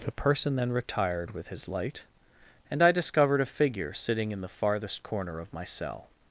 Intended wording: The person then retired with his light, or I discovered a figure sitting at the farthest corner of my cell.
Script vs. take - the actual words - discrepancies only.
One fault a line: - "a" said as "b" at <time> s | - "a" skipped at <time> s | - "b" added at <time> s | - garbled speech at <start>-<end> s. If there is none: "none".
- "or" said as "and" at 2.7 s
- "at" said as "in" at 4.3 s